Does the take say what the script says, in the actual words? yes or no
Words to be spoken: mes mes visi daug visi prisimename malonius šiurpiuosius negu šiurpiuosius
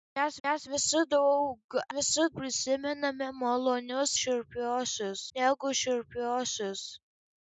yes